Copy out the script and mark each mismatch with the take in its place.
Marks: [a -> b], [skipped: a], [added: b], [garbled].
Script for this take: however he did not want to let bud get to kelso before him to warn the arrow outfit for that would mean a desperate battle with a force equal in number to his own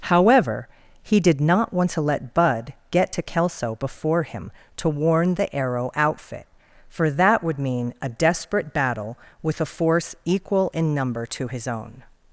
however he did not want to let bud get to kelso before him to warn the arrow outfit for that would mean a desperate battle with a force equal in number to his own